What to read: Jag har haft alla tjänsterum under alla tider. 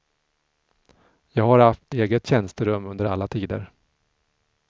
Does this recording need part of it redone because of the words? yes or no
yes